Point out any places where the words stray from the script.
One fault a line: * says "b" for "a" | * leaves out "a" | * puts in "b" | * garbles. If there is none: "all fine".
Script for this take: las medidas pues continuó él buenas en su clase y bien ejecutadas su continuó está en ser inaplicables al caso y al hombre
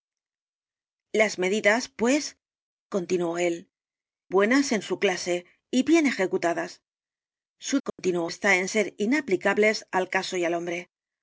all fine